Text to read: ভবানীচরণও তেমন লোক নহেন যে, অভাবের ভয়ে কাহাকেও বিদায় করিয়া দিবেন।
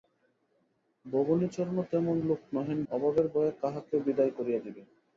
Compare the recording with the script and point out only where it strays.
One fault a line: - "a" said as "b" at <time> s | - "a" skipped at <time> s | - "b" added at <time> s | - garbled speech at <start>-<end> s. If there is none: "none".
- "যে" skipped at 2.8 s